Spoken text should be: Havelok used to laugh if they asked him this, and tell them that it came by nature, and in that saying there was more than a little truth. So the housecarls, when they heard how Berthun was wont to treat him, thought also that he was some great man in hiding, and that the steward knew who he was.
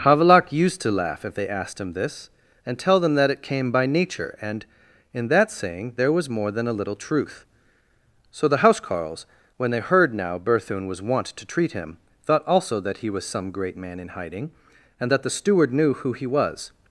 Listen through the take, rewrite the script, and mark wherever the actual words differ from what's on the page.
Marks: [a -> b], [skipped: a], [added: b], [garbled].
Havelok used to laugh if they asked him this, and tell them that it came by nature, and in that saying there was more than a little truth. So the housecarls, when they heard [how -> now] Berthun was wont to treat him, thought also that he was some great man in hiding, and that the steward knew who he was.